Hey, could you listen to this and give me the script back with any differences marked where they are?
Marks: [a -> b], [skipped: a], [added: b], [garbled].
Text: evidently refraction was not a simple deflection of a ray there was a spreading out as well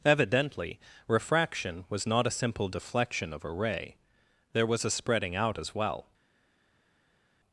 evidently refraction was not a simple deflection of a ray there was a spreading out as well